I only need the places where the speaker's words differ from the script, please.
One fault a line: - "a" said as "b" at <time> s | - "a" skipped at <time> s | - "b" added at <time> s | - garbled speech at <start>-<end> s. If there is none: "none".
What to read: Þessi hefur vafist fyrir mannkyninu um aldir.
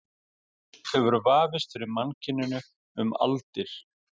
none